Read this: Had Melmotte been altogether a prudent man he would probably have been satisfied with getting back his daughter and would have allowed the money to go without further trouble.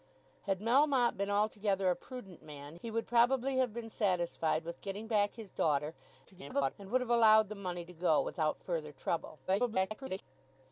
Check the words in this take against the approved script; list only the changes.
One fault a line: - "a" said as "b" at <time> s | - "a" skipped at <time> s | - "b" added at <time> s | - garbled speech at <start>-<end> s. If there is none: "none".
- garbled speech at 6.2-6.7 s
- garbled speech at 9.5-10.2 s